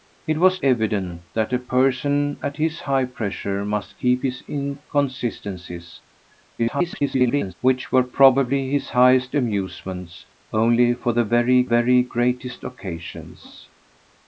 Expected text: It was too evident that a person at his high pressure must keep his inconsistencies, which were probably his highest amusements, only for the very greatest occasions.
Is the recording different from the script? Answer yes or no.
yes